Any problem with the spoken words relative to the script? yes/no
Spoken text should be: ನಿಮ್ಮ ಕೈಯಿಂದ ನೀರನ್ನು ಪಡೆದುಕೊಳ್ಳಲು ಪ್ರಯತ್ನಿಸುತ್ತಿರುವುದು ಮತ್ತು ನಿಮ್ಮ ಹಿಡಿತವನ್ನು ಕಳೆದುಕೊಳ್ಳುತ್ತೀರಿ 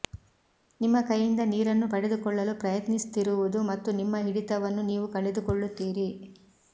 yes